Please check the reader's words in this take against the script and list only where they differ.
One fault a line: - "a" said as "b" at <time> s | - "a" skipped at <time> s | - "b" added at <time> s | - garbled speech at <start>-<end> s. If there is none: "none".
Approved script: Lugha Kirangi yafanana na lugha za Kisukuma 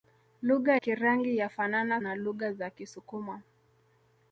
none